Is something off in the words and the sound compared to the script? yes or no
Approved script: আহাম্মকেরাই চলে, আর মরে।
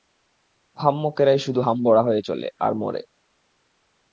yes